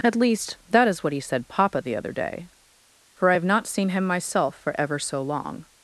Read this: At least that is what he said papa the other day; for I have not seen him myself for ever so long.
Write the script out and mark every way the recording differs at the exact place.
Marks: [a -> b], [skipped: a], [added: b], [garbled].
At least that is what he said papa the other day; for I have not seen him myself for ever so long.